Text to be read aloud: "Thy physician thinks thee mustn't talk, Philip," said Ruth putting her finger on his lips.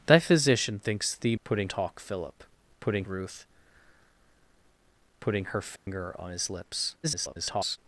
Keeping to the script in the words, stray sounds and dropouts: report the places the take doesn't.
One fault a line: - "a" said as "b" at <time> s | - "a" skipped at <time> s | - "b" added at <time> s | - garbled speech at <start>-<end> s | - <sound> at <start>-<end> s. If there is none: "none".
- "mustn't" said as "putting" at 1.4 s
- "said" said as "putting" at 2.8 s
- dropout at 5.8-5.9 s
- garbled speech at 7.0-7.8 s